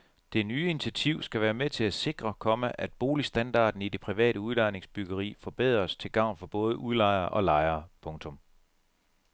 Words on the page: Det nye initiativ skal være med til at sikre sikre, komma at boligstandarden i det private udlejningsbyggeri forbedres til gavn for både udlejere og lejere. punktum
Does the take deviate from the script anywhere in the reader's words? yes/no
yes